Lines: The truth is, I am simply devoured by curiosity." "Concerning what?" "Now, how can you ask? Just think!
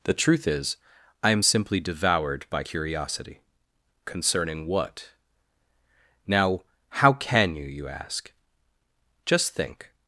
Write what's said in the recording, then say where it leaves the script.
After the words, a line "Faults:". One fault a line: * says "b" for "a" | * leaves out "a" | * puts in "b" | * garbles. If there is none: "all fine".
The truth is, I am simply devoured by curiosity." "Concerning what?" "Now, how can you you ask? Just think!
Faults:
* puts in "you"